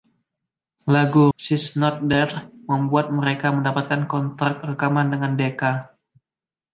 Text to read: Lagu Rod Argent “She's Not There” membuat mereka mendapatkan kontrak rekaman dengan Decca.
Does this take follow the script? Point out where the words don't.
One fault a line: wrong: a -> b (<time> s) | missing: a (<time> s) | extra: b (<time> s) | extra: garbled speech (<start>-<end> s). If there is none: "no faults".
missing: Rod Argent (1.3 s)